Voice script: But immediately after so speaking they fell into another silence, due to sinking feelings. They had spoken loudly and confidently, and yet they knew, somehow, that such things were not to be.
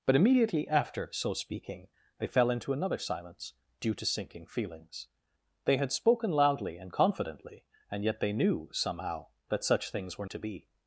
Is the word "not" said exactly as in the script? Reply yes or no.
no